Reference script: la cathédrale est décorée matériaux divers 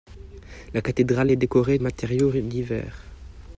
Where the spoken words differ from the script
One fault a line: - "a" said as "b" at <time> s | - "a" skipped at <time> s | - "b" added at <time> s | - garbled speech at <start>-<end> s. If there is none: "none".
none